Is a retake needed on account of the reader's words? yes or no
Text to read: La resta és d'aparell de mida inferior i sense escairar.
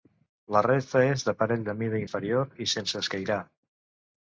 no